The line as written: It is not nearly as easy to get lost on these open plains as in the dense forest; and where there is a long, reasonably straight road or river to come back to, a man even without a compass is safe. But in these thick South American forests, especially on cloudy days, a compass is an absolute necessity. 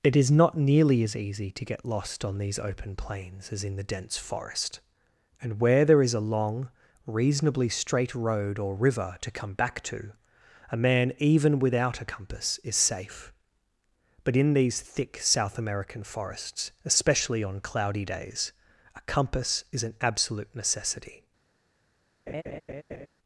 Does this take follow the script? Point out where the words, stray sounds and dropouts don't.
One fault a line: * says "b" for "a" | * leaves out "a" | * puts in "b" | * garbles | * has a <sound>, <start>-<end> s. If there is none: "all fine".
* has a laugh, 22.3-23.1 s